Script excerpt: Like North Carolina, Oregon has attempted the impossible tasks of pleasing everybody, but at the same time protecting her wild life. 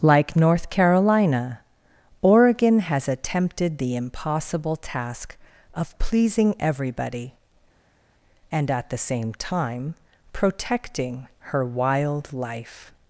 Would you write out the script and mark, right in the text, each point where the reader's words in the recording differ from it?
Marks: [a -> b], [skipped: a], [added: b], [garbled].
Like North Carolina, Oregon has attempted the impossible [tasks -> task] of pleasing everybody, [but -> and] at the same time protecting her wild life.